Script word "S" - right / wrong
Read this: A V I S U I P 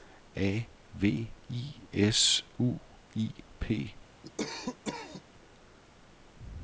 right